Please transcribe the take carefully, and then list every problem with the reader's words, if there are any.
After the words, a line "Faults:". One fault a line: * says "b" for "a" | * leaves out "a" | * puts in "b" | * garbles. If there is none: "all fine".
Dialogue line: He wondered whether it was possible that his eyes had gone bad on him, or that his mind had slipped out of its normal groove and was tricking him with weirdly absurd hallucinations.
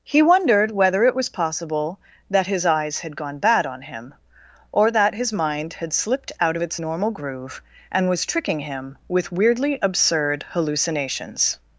He wondered whether it was possible that his eyes had gone bad on him, or that his mind had slipped out of its normal groove and was tricking him with weirdly absurd hallucinations.
Faults:
all fine